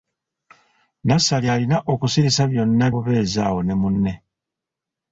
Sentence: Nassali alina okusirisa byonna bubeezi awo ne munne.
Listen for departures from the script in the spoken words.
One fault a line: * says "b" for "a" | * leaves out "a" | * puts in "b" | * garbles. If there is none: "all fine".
all fine